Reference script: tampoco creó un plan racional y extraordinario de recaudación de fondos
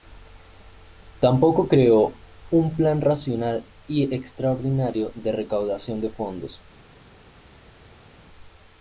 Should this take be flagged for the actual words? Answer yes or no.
no